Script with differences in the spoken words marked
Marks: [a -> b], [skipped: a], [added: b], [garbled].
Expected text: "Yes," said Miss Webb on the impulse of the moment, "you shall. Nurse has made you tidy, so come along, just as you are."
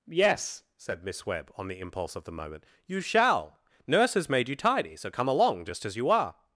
"Yes," said Miss Webb on the impulse of the moment, "you shall. Nurse has made you tidy, so come along, just as you are."